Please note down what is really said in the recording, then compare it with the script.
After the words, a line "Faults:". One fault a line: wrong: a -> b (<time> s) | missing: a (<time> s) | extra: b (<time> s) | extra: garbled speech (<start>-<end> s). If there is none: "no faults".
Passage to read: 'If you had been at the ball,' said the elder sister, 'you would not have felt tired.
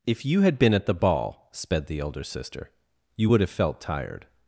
'If you had been at the ball,' sped the elder sister, 'you would have felt tired.
Faults:
wrong: said -> sped (1.5 s)
missing: not (3.4 s)